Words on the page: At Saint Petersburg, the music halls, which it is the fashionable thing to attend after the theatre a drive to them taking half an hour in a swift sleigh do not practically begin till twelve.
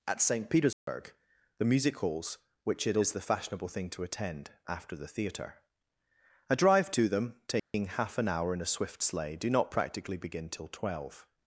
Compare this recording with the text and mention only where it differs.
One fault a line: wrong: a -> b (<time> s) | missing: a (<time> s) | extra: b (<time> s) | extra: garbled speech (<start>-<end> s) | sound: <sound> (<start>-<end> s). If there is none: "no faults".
sound: dropout (0.7-0.9 s)
sound: dropout (7.6-7.7 s)